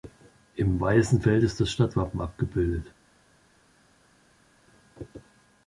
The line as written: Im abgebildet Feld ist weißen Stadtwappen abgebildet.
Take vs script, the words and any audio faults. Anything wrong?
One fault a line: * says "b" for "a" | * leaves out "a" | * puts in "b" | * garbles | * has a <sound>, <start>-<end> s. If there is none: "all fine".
* says "weißen" for "abgebildet"
* says "das" for "weißen"